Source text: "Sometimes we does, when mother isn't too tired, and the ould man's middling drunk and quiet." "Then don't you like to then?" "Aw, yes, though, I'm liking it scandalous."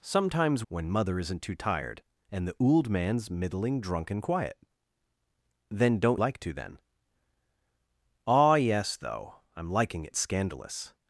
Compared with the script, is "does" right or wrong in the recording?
wrong